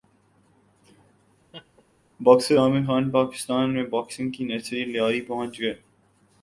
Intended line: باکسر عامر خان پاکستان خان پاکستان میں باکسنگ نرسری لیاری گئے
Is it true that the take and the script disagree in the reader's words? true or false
true